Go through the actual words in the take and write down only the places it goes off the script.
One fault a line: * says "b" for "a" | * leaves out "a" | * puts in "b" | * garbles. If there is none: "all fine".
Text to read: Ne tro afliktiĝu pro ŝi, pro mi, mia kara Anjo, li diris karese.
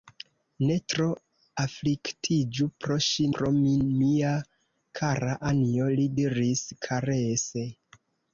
all fine